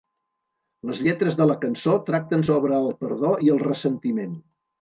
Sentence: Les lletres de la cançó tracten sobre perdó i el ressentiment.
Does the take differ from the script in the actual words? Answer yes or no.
yes